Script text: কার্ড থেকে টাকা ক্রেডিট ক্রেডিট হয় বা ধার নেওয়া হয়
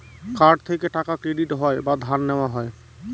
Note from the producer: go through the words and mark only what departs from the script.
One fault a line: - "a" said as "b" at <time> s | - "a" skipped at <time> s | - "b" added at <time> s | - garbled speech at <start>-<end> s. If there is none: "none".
- "ক্রেডিট" skipped at 1.5 s